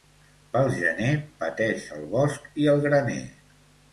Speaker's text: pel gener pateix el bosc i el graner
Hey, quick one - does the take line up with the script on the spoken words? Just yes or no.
yes